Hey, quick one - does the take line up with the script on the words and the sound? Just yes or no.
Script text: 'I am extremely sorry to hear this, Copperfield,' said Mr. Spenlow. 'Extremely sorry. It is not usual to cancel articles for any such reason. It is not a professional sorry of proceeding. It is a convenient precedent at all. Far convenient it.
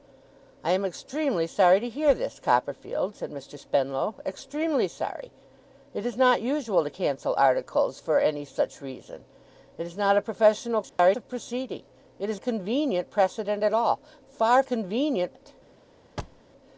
no